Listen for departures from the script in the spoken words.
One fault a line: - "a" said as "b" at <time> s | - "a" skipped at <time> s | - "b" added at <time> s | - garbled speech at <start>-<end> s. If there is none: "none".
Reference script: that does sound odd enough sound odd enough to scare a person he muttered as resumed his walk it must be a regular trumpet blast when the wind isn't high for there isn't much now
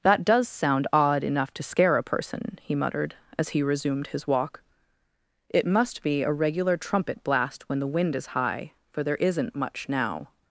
- "sound odd enough" skipped at 1.5 s
- "he" added at 3.5 s
- "isn't" said as "is" at 8.2 s